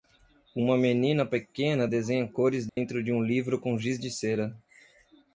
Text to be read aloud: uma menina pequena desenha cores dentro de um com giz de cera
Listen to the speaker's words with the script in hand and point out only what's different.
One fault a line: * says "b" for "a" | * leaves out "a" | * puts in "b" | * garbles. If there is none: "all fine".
* puts in "livro"